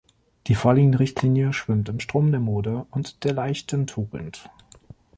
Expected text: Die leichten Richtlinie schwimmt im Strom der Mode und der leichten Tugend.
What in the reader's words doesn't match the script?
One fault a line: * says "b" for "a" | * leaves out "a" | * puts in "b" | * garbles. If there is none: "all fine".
* says "vorliegende" for "leichten"